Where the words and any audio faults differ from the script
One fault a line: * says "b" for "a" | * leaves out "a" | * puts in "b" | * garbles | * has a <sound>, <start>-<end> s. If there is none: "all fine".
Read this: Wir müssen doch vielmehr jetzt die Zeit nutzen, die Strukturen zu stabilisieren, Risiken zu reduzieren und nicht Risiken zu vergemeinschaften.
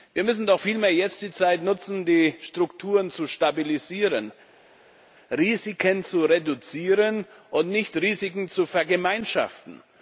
all fine